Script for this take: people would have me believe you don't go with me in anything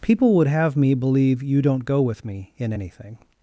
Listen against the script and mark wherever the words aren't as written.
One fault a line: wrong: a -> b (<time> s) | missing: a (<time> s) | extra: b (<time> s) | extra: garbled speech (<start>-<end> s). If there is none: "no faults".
no faults